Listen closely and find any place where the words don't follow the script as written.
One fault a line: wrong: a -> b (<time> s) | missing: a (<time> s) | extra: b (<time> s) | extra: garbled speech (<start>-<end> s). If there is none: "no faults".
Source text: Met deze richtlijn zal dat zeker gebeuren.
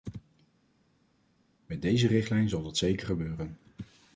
no faults